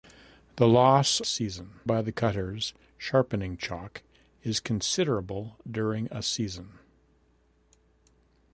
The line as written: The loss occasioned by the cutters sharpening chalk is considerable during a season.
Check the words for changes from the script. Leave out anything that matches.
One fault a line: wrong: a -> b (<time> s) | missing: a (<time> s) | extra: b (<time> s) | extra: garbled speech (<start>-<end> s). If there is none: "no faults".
wrong: occasioned -> season (1.2 s)